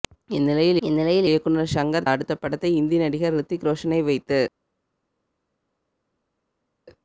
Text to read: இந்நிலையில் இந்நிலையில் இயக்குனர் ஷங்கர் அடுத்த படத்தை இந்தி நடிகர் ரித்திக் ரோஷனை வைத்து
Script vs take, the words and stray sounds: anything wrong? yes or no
no